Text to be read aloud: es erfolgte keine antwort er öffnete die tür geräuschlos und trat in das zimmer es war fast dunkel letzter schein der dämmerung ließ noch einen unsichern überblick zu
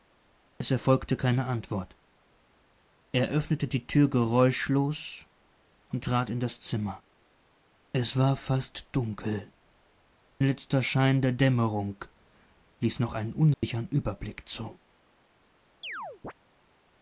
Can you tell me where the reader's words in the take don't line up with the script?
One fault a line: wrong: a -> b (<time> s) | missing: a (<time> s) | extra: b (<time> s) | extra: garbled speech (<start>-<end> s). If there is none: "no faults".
no faults